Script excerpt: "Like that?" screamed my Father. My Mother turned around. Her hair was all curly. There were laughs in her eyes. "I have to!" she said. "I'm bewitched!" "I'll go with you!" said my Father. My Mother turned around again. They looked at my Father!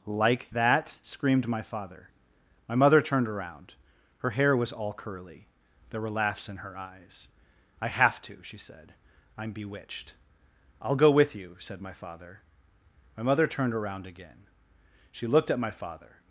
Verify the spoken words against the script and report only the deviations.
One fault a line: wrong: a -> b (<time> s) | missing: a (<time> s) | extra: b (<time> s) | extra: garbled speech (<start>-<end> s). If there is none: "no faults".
wrong: They -> She (15.1 s)